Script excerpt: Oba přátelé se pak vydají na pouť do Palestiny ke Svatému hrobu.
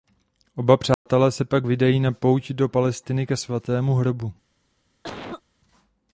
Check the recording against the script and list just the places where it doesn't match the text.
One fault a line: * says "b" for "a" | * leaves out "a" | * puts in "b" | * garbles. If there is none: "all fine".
all fine